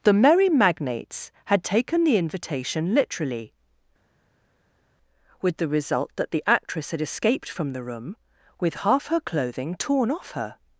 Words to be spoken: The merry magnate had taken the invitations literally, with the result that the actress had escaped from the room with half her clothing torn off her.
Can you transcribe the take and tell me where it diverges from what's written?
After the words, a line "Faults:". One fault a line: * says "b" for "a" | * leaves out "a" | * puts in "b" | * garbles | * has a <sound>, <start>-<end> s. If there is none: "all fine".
The merry magnates had taken the invitation literally, with the result that the actress had escaped from the room with half her clothing torn off her.
Faults:
* says "magnates" for "magnate"
* says "invitation" for "invitations"